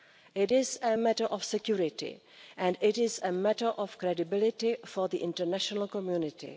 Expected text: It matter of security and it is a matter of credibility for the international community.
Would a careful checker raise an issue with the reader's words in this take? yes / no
yes